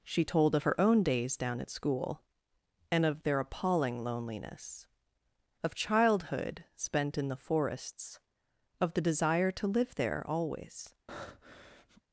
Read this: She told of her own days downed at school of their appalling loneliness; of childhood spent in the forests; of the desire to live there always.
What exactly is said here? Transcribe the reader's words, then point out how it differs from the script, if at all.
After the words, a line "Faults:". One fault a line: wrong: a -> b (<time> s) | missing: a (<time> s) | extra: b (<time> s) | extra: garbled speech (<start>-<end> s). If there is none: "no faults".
She told of her own days down at school and of their appalling loneliness; of childhood spent in the forests; of the desire to live there always.
Faults:
wrong: downed -> down (1.4 s)
extra: and (2.9 s)